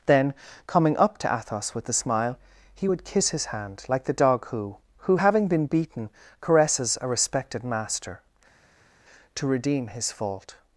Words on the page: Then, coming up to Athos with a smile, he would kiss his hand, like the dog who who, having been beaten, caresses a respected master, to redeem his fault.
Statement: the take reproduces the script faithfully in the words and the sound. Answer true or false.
true